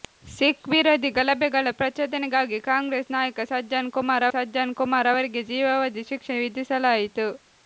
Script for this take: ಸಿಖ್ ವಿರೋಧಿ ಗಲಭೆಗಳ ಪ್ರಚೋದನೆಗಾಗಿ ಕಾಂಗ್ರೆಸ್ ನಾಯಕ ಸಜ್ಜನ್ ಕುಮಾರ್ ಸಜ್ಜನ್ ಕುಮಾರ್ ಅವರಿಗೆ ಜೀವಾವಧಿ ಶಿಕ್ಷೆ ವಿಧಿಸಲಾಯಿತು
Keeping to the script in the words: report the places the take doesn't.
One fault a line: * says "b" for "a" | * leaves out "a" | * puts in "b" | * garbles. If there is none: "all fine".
all fine